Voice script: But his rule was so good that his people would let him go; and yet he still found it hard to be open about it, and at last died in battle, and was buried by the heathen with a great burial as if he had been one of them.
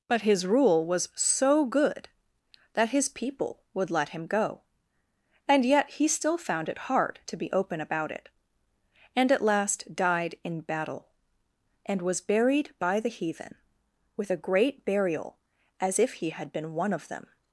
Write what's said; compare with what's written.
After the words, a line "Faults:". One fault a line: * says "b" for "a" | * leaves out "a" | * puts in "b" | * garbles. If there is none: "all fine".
But his rule was so good that his people would let him go; and yet he still found it hard to be open about it, and at last died in battle, and was buried by the heathen with a great burial as if he had been one of them.
Faults:
all fine